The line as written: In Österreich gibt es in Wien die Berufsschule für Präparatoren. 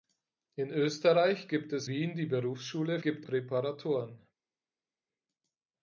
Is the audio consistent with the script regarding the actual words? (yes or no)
no